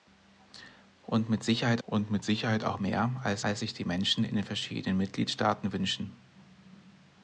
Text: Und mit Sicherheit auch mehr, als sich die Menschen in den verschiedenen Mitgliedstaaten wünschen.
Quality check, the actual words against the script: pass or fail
fail